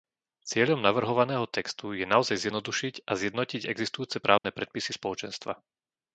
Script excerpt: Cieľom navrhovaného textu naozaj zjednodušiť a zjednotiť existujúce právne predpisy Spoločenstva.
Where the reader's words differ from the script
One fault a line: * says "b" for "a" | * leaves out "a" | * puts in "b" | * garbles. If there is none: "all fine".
* puts in "je"